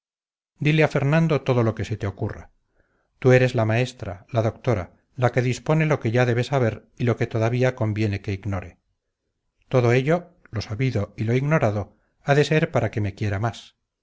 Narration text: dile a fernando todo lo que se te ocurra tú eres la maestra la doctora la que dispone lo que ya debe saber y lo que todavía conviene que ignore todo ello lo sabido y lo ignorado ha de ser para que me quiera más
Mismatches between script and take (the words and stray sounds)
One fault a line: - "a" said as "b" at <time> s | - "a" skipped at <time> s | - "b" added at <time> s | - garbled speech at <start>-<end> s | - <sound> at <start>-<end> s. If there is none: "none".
none